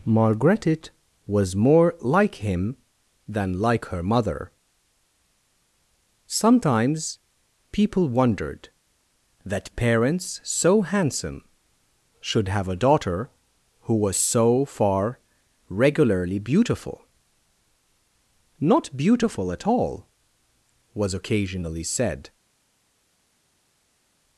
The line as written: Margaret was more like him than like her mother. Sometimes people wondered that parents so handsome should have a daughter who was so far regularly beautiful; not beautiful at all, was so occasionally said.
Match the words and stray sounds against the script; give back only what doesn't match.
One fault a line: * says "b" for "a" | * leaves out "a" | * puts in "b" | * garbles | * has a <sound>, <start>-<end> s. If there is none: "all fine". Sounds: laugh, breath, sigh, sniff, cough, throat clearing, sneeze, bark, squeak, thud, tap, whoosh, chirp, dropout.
* leaves out "so"